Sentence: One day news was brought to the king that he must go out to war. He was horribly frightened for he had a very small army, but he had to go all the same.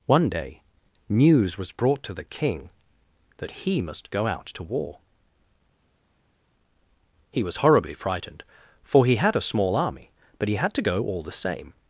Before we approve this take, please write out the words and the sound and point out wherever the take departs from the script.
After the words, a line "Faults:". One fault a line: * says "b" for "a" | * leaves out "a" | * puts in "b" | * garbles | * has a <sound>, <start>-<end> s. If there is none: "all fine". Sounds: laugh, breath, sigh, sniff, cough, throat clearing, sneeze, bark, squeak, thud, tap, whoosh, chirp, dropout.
One day news was brought to the king that he must go out to war. He was horribly frightened for he had a small army, but he had to go all the same.
Faults:
* leaves out "very"